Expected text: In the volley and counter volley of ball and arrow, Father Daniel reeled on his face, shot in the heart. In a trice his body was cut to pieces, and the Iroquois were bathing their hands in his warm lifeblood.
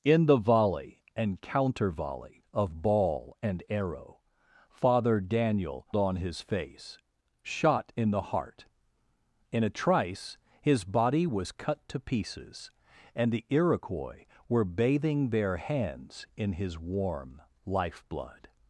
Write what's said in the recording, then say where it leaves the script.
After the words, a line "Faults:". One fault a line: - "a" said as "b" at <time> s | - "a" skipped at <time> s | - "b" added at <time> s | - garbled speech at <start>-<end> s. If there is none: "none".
In the volley and counter volley of ball and arrow, Father Daniel on his face, shot in the heart. In a trice his body was cut to pieces, and the Iroquois were bathing their hands in his warm lifeblood.
Faults:
- "reeled" skipped at 5.8 s